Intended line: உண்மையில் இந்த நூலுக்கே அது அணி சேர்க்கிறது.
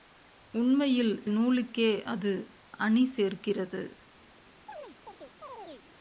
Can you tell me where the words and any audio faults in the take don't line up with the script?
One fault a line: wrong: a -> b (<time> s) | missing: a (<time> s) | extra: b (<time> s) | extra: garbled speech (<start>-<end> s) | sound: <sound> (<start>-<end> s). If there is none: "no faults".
missing: இந்த (1.2 s)
sound: chirp (4.7-5.9 s)